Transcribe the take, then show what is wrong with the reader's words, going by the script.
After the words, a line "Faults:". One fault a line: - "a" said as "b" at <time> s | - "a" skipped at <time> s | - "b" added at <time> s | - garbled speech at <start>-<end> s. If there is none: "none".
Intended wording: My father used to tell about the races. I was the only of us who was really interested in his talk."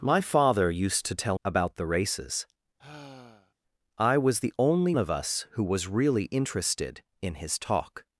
My father used to tell about the races. I was the only of us who was really interested in his talk."
Faults:
none